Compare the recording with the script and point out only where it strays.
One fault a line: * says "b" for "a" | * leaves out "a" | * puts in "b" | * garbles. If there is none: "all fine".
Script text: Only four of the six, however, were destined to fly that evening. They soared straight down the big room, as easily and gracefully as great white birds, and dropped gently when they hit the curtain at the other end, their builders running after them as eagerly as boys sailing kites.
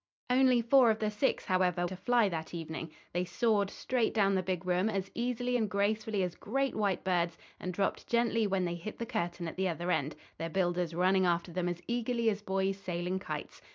* leaves out "were destined"